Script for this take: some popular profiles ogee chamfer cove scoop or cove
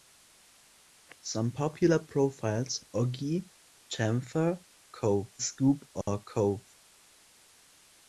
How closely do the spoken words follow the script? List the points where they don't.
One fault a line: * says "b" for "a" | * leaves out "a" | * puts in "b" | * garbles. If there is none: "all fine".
all fine